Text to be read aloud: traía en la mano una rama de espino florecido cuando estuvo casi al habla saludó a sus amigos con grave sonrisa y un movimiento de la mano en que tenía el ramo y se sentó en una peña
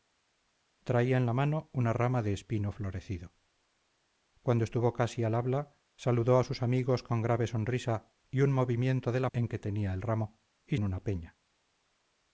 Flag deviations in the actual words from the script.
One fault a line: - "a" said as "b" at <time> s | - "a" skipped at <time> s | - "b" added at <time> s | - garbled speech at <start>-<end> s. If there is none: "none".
- "mano" skipped at 9.3 s
- "se sentó" skipped at 10.8 s